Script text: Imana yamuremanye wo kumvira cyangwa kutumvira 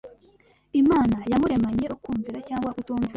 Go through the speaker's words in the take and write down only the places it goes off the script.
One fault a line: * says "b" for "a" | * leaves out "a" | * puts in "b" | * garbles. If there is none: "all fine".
all fine